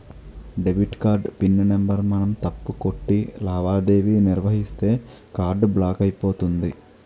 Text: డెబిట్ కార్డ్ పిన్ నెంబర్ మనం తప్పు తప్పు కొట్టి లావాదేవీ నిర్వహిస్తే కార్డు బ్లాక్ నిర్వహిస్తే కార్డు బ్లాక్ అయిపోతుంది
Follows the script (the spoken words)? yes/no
no